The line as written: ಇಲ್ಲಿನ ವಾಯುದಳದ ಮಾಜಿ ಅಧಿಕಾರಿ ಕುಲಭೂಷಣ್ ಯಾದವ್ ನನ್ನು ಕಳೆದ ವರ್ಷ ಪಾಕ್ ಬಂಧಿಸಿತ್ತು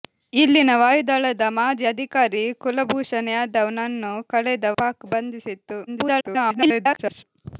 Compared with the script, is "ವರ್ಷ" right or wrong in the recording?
wrong